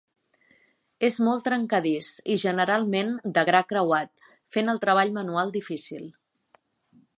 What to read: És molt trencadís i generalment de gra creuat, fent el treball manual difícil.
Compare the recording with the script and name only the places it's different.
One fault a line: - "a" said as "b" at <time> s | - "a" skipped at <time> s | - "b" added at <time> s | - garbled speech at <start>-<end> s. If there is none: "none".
none